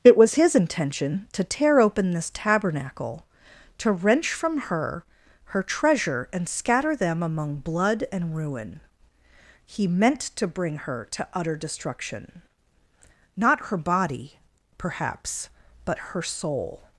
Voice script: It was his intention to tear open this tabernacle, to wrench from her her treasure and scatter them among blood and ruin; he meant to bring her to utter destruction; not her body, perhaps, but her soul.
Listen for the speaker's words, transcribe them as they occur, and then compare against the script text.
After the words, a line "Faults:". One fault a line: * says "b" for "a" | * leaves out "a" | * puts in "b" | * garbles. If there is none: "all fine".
It was his intention to tear open this tabernacle, to wrench from her her treasure and scatter them among blood and ruin; he meant to bring her to utter destruction; not her body, perhaps, but her soul.
Faults:
all fine